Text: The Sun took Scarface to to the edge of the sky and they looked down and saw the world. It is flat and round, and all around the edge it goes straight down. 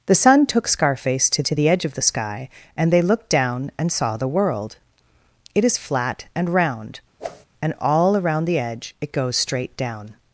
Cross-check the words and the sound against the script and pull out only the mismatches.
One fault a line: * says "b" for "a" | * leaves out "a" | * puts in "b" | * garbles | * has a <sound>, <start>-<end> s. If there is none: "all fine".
* has a whoosh, 7.2-7.5 s